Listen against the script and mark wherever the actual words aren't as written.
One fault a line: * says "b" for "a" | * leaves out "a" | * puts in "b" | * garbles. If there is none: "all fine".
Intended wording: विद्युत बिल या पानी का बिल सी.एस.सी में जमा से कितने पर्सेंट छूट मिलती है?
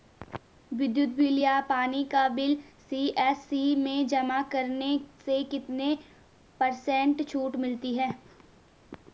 * puts in "करने"